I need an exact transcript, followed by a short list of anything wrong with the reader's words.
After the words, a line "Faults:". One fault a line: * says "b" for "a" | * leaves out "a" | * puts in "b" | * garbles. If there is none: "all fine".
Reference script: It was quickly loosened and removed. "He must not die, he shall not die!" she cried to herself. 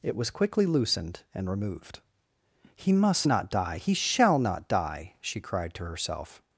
It was quickly loosened and removed. "He must not die, he shall not die!" she cried to herself.
Faults:
all fine